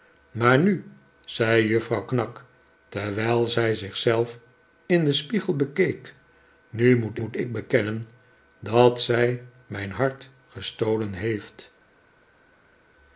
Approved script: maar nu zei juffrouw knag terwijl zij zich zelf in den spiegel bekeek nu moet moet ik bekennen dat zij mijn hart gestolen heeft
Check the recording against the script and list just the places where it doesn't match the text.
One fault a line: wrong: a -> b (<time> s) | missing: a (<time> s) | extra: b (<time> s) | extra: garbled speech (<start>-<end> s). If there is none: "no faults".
no faults